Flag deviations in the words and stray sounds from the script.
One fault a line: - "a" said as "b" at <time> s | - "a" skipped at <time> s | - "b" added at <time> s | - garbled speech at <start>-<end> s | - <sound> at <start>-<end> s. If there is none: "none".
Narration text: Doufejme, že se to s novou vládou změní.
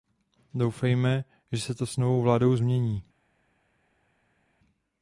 none